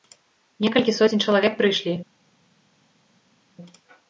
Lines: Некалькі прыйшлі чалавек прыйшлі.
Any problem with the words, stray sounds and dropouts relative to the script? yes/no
yes